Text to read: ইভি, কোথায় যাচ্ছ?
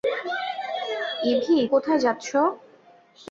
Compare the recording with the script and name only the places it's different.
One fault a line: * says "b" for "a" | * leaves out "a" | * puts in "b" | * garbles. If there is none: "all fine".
all fine